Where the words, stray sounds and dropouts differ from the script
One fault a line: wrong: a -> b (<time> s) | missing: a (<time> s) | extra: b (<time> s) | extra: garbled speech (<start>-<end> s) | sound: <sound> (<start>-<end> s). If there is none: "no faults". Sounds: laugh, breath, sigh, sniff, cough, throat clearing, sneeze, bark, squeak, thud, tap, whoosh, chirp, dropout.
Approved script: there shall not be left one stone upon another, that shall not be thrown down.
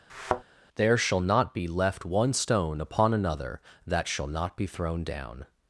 sound: thud (0.1-0.4 s)